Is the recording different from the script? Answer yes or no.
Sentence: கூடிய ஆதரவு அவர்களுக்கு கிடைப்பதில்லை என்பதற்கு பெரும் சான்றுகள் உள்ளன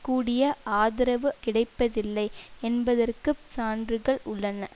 yes